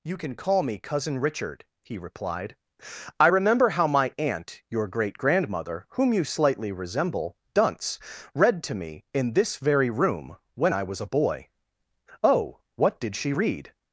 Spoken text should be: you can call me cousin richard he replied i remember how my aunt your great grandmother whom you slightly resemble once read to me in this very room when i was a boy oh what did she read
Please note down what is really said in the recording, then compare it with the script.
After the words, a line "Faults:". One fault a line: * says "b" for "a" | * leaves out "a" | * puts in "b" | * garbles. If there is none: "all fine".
you can call me cousin richard he replied i remember how my aunt your great grandmother whom you slightly resemble dunce read to me in this very room when i was a boy oh what did she read
Faults:
* says "dunce" for "once"